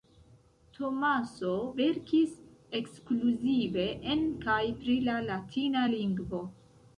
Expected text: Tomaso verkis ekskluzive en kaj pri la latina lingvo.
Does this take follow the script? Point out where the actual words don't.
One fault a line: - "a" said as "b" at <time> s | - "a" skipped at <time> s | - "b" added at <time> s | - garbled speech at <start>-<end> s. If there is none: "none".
none